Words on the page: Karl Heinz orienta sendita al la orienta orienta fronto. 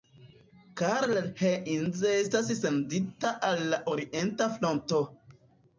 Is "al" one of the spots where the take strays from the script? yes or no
no